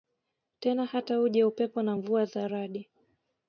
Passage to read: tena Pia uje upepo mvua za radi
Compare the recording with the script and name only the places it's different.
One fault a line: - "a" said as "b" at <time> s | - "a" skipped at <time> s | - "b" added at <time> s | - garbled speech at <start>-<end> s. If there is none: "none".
- "Pia" said as "Hata" at 0.8 s
- "na" added at 1.8 s